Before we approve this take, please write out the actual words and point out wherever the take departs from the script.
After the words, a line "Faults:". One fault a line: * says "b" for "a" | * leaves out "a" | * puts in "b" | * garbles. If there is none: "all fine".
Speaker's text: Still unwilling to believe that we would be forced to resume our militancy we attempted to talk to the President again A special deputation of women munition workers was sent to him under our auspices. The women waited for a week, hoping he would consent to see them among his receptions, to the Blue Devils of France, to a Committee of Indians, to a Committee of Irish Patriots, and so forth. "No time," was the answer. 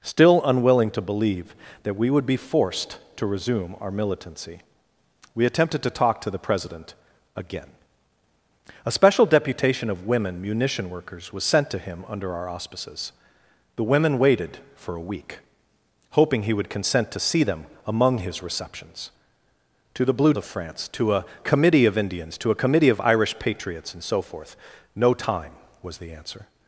Still unwilling to believe that we would be forced to resume our militancy we attempted to talk to the President again A special deputation of women munition workers was sent to him under our auspices. The women waited for a week, hoping he would consent to see them among his receptions, to the Blue Of France, to a Committee of Indians, to a Committee of Irish Patriots, and so forth. "No time," was the answer.
Faults:
* leaves out "Devils"